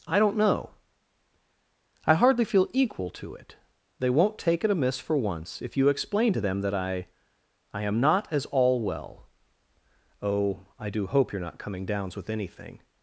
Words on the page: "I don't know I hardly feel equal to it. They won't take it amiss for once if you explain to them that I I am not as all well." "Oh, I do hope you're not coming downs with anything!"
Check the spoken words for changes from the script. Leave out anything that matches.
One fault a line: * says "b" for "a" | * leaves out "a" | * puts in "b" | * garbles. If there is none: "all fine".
all fine